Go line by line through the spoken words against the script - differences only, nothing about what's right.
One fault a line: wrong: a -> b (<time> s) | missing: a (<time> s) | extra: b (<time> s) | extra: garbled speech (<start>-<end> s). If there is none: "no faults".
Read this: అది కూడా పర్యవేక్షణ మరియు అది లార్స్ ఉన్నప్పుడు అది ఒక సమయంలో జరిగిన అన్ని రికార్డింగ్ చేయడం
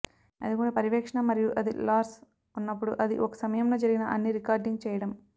no faults